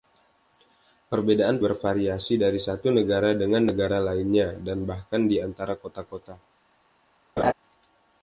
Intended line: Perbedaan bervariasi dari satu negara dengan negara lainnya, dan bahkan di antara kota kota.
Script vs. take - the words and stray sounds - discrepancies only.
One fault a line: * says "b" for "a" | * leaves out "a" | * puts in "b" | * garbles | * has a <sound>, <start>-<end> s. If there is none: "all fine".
* has a laugh, 7.4-7.5 s